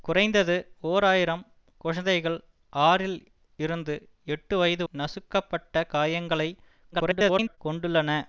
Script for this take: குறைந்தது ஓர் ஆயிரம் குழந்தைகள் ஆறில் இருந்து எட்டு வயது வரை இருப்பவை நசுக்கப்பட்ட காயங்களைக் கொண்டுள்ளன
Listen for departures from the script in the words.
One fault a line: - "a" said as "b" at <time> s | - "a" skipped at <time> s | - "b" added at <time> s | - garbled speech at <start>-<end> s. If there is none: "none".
- "வரை இருப்பவை" skipped at 4.8 s
- garbled speech at 6.9-7.6 s